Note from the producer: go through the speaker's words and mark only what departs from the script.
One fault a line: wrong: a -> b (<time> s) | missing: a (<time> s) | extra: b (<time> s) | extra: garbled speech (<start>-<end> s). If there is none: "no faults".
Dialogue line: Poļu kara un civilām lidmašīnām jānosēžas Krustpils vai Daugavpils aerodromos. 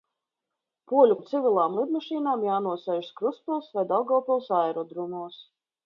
missing: kara (1.2 s)